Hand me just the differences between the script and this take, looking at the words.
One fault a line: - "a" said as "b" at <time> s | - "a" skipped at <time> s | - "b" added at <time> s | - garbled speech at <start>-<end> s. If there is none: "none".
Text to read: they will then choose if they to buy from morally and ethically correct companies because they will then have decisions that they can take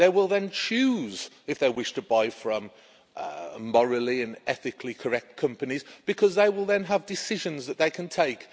- "wish" added at 1.7 s